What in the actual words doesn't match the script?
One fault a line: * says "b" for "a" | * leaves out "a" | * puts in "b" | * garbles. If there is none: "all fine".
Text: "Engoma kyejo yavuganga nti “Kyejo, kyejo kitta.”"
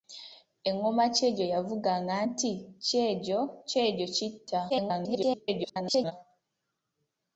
* garbles